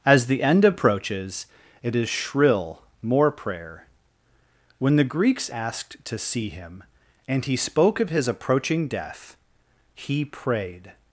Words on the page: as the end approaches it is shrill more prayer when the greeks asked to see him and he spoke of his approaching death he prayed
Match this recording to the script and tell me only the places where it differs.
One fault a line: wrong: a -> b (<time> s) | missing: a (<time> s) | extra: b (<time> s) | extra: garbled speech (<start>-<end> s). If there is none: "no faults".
no faults